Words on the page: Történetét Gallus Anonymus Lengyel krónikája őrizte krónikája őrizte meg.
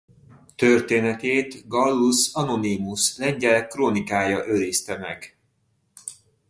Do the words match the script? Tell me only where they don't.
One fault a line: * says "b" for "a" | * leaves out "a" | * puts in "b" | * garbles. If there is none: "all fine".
* leaves out "krónikája őrizte"